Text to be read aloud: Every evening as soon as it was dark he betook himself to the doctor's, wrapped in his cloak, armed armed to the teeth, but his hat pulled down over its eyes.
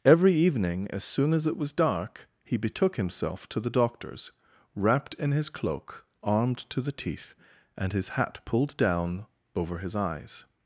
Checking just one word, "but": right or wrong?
wrong